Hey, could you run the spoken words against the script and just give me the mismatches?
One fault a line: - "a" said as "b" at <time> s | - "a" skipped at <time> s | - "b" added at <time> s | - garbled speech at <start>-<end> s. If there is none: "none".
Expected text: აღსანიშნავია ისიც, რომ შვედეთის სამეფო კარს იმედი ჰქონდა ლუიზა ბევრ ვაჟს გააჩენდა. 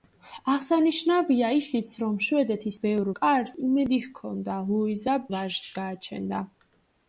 - "სამეფო" said as "ბევრ" at 2.8 s
- "ბევრ" skipped at 5.2 s